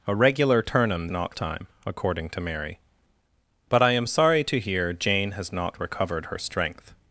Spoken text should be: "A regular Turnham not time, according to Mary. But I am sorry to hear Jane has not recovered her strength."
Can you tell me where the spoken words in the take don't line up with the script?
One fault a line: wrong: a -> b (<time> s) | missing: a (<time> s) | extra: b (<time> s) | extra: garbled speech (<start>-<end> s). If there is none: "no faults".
no faults